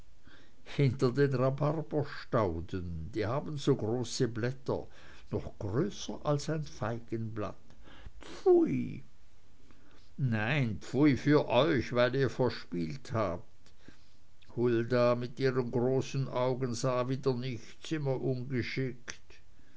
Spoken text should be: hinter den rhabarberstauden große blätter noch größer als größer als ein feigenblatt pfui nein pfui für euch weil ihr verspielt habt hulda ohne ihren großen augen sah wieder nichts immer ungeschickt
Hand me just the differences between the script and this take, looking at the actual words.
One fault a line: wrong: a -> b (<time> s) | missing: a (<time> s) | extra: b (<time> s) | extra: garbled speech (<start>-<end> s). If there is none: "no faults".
extra: die haben so (3.1 s)
missing: größer als (6.5 s)
wrong: ohne -> mit (15.1 s)